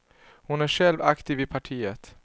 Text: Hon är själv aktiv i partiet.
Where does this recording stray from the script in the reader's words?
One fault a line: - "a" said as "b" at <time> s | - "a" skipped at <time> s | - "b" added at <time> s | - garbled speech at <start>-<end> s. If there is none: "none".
none